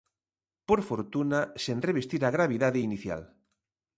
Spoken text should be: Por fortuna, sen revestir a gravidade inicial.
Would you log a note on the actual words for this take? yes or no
no